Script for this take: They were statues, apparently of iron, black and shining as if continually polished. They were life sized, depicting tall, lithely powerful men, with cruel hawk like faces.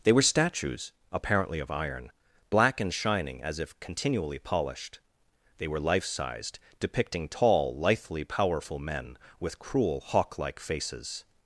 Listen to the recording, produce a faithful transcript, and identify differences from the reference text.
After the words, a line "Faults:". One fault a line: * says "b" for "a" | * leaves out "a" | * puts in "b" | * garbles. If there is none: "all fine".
They were statues, apparently of iron, black and shining as if continually polished. They were life sized, depicting tall, lithely powerful men, with cruel hawk like faces.
Faults:
all fine